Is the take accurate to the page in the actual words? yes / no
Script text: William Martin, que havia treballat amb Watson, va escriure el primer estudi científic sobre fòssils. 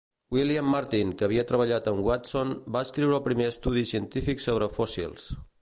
yes